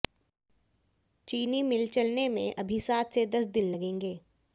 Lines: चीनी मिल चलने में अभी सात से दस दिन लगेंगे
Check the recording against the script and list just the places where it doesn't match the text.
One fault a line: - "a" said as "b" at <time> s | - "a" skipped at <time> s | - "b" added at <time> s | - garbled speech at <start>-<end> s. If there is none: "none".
none